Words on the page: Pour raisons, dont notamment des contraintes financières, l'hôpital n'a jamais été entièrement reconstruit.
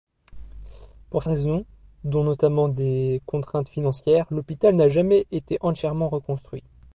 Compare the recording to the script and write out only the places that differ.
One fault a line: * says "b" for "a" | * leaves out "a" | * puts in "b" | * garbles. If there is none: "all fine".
all fine